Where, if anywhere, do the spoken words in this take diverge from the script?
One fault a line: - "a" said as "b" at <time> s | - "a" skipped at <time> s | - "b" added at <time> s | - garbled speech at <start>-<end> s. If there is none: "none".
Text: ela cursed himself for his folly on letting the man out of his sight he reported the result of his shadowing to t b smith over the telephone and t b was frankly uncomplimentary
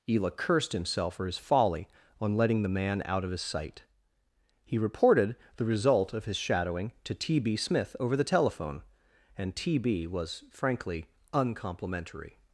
none